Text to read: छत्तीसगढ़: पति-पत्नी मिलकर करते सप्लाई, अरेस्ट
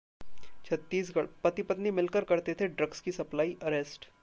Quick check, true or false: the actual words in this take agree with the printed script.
false